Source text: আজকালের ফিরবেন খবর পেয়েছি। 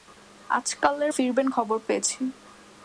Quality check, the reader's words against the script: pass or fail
pass